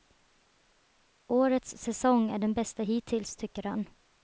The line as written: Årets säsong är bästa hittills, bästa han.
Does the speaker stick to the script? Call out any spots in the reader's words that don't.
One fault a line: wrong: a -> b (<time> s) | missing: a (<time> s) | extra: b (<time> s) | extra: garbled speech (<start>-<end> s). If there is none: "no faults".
extra: den (2.4 s)
wrong: bästa -> tycker (3.4 s)